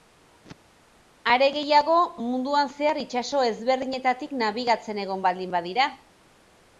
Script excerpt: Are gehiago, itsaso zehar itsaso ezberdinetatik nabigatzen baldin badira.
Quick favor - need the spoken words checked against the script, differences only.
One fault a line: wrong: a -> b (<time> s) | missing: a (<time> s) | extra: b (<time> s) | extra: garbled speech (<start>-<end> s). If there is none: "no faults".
wrong: itsaso -> munduan (2.3 s)
extra: egon (5.1 s)